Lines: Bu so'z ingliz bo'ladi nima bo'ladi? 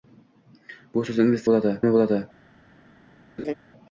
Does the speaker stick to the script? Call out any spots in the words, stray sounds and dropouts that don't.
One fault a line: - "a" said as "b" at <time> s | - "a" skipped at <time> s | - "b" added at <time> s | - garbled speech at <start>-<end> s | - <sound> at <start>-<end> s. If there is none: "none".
- laugh at 3.4-3.5 s